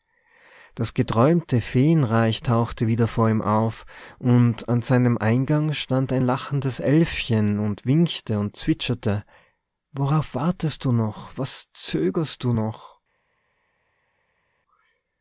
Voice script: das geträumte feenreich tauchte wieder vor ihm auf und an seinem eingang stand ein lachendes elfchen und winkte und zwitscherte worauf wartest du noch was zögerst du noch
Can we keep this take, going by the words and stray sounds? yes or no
yes